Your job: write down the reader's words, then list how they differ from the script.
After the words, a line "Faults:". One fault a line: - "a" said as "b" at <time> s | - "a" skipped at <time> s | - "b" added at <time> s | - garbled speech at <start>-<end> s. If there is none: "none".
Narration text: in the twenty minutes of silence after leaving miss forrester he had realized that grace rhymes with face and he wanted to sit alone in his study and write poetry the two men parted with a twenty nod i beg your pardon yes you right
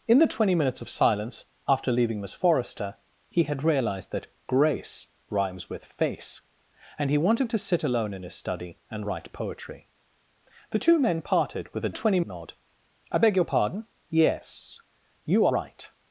in the twenty minutes of silence after leaving miss forrester he had realized that grace rhymes with face and he wanted to sit alone in his study and write poetry the two men parted with a twenty nod i beg your pardon yes you right
Faults:
none